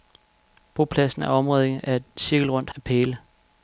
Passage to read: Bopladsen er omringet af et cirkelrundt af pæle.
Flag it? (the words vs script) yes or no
no